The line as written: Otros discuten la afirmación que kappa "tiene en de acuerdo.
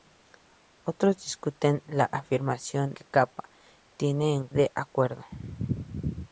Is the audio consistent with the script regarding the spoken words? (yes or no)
yes